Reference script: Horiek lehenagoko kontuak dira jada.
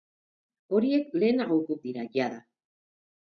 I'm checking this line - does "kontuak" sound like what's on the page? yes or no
no